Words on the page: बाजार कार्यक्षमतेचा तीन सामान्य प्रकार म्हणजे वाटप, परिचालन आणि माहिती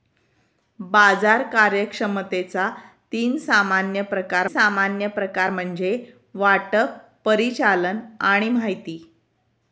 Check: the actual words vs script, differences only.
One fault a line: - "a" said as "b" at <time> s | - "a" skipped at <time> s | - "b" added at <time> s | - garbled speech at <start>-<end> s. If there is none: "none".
- "सामान्य प्रकार" added at 4.4 s